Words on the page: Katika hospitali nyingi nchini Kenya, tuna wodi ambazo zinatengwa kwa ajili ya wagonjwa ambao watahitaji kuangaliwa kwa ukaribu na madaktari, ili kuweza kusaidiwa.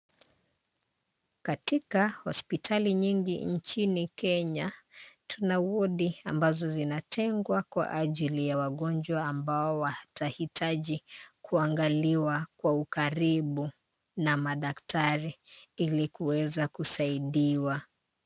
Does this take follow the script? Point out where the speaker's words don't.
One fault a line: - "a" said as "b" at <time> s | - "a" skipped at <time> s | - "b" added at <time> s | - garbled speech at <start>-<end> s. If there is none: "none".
none